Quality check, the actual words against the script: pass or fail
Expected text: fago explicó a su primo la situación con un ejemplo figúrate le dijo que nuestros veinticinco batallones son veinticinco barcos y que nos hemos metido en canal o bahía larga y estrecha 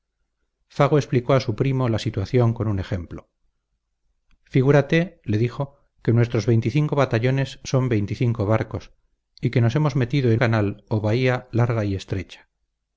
pass